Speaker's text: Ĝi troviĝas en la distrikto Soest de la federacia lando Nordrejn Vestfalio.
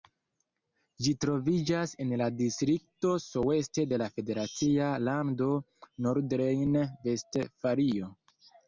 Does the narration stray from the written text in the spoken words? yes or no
no